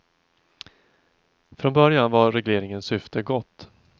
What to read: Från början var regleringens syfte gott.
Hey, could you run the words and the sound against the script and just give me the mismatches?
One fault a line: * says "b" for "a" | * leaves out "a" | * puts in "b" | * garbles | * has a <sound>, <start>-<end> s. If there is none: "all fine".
all fine